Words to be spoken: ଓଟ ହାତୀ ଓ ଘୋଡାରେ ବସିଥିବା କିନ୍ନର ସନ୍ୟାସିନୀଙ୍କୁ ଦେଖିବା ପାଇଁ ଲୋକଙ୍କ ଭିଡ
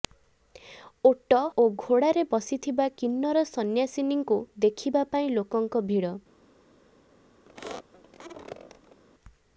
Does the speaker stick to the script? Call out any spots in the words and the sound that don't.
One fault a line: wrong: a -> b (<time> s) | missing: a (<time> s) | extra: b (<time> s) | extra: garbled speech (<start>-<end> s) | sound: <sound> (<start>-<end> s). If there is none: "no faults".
missing: ହାତୀ (1.4 s)
sound: squeak (7.5-9.0 s)